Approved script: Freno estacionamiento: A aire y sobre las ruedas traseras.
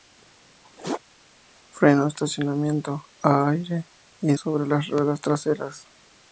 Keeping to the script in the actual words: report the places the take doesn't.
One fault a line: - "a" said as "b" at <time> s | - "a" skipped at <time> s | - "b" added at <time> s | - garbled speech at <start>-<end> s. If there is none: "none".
none